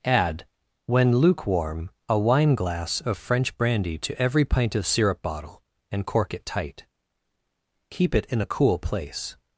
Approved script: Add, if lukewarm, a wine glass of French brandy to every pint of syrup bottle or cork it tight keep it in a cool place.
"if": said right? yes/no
no